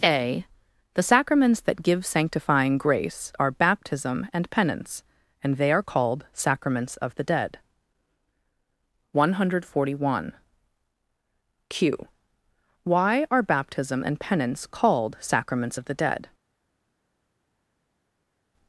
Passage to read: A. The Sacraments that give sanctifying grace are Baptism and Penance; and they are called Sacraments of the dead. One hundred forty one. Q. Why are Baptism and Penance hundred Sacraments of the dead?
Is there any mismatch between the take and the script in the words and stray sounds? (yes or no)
yes